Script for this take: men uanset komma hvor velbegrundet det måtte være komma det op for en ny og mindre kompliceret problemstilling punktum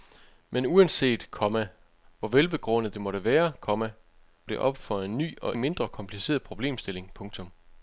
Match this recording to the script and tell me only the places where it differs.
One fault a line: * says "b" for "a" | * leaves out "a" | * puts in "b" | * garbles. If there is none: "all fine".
all fine